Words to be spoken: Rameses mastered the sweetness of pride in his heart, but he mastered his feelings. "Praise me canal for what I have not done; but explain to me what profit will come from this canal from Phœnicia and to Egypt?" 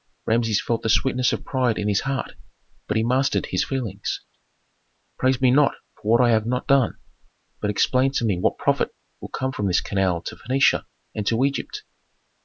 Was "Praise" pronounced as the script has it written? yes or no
yes